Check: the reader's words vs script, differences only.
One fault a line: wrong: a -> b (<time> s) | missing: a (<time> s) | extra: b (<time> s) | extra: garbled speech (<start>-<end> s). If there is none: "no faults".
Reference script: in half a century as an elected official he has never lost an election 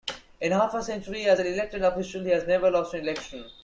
no faults